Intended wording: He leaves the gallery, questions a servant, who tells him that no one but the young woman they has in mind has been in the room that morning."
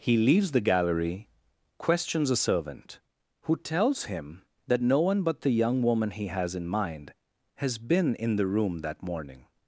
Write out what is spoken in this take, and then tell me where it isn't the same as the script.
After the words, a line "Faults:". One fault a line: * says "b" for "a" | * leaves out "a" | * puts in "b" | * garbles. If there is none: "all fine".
He leaves the gallery, questions a servant, who tells him that no one but the young woman he has in mind has been in the room that morning."
Faults:
* says "he" for "they"